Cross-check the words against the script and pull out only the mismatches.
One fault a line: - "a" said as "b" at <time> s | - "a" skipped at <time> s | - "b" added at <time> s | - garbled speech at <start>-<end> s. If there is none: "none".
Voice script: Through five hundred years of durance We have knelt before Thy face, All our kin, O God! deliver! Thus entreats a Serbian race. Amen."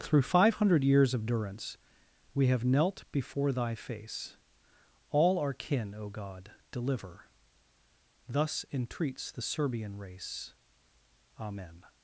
- "a" said as "the" at 9.3 s